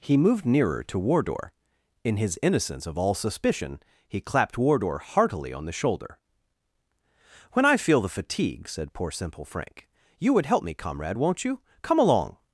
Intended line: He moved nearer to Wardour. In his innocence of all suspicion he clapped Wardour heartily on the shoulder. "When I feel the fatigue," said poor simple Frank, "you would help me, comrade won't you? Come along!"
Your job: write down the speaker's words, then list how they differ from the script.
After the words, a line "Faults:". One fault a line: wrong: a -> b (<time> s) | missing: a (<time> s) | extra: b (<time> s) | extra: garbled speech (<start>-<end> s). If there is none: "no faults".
He moved nearer to Wardour. In his innocence of all suspicion he clapped Wardour heartily on the shoulder. "When I feel the fatigue," said poor simple Frank, "you would help me, comrade won't you? Come along!"
Faults:
no faults